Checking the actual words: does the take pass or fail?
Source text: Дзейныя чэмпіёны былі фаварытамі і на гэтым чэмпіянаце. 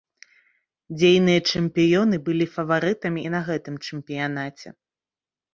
pass